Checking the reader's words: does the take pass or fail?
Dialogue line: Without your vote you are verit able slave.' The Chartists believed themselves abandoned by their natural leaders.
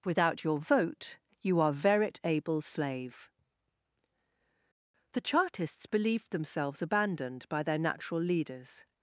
pass